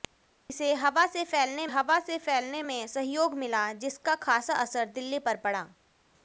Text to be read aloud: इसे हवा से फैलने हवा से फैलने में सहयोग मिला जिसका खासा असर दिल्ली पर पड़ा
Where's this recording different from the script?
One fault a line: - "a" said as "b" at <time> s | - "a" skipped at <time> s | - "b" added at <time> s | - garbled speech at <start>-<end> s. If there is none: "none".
none